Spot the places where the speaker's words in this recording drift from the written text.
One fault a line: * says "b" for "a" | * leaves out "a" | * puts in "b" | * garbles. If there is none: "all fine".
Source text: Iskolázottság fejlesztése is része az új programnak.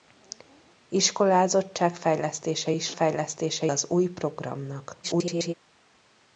* says "fejlesztése" for "része"
* garbles